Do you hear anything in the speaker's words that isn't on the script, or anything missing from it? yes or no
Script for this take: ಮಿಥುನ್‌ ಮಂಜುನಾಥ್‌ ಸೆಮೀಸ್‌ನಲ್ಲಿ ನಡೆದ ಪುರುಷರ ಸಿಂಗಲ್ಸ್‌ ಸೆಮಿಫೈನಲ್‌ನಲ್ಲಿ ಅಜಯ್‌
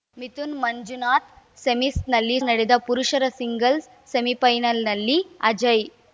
no